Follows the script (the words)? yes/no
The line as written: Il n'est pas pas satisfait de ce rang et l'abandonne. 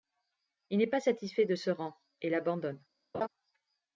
no